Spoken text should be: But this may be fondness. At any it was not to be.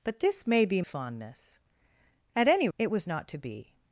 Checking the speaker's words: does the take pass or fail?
pass